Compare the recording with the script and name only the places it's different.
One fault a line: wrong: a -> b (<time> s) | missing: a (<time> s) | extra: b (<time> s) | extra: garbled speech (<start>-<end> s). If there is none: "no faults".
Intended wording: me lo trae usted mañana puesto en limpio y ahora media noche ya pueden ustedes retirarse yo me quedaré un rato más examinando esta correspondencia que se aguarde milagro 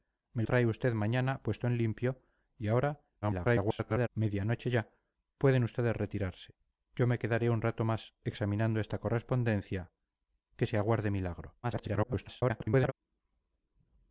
missing: lo (0.4 s)
extra: garbled speech (3.2-4.1 s)
extra: garbled speech (11.6-12.9 s)